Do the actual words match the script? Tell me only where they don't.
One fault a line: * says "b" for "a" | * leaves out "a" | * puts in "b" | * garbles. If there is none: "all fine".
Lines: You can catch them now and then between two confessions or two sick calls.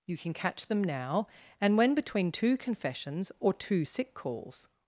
* says "when" for "then"